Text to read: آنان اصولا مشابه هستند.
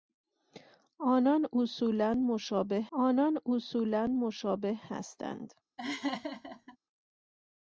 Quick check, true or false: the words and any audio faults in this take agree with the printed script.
false